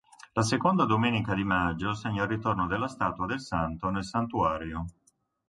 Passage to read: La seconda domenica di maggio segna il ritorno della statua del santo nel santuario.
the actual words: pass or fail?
pass